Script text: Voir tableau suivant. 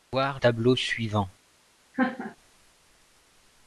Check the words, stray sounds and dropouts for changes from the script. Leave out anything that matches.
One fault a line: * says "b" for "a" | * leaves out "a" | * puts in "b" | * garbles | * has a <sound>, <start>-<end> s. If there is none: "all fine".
* has a laugh, 1.9-2.4 s